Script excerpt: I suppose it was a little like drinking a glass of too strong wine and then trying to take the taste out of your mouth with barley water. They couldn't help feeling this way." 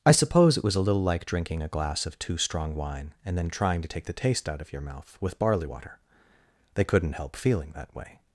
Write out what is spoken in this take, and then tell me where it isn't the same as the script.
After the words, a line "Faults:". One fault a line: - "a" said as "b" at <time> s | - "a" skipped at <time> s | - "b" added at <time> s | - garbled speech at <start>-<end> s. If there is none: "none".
I suppose it was a little like drinking a glass of too strong wine and then trying to take the taste out of your mouth with barley water. They couldn't help feeling that way."
Faults:
- "this" said as "that" at 7.7 s